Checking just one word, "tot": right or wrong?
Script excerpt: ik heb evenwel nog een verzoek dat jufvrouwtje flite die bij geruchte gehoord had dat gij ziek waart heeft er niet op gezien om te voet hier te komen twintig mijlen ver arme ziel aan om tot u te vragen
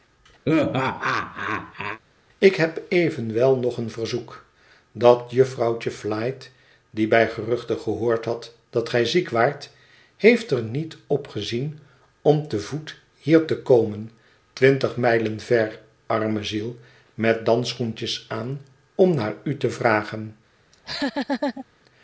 wrong